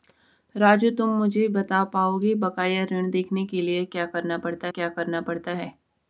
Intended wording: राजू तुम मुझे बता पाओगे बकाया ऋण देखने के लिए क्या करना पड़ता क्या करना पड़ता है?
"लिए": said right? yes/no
yes